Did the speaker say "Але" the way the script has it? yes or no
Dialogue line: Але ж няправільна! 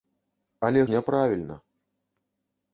yes